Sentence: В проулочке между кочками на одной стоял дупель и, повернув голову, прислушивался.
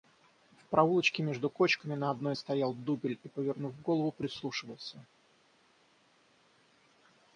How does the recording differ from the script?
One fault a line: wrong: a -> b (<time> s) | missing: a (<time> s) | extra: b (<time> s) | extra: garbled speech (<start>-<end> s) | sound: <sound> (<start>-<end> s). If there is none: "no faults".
no faults